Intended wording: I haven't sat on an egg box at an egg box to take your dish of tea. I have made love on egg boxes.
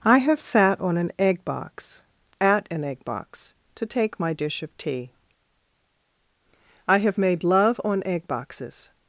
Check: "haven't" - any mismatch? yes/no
yes